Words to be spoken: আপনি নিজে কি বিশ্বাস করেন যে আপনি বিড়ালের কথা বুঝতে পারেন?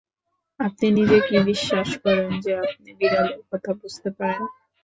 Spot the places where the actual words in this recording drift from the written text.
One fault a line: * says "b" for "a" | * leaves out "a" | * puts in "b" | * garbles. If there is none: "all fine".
all fine